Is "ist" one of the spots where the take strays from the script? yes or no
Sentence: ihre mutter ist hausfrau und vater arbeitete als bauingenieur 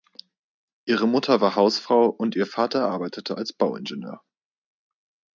yes